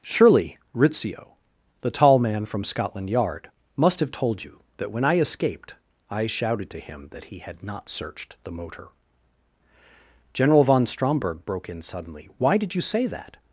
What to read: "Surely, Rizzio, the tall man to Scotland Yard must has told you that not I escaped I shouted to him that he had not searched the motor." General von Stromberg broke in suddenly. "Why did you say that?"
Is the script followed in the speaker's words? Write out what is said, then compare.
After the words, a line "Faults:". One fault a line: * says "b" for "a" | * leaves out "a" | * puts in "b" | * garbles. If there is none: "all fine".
"Surely, Rizzio, the tall man from Scotland Yard must have told you that when I escaped I shouted to him that he had not searched the motor." General von Stromberg broke in suddenly. "Why did you say that?"
Faults:
* says "from" for "to"
* says "have" for "has"
* says "when" for "not"